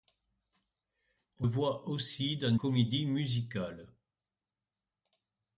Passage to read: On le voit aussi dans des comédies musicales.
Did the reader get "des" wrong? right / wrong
wrong